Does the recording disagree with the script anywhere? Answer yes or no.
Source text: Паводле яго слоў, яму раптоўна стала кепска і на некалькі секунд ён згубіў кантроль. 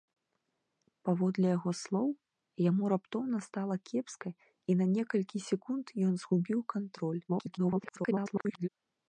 yes